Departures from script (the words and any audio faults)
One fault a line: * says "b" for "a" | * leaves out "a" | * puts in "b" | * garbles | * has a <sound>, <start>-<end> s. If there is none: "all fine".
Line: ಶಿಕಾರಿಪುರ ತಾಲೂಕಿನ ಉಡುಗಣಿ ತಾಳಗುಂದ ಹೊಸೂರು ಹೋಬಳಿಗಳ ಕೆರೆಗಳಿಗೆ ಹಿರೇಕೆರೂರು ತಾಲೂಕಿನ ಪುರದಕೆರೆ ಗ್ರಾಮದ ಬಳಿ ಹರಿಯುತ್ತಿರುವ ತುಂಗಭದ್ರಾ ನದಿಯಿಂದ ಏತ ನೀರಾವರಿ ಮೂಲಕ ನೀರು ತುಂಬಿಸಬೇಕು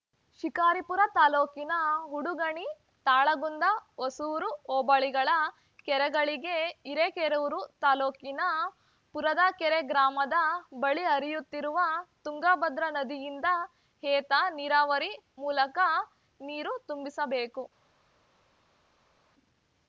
all fine